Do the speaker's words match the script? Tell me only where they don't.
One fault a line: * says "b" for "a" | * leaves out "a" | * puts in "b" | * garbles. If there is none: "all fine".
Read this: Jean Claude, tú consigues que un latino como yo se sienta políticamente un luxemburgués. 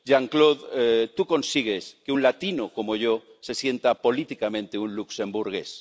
all fine